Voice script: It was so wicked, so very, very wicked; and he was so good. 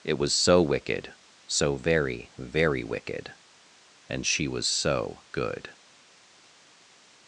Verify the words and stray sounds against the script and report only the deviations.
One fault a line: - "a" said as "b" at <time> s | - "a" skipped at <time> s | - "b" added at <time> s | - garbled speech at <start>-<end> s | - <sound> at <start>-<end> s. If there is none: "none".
- "he" said as "she" at 4.2 s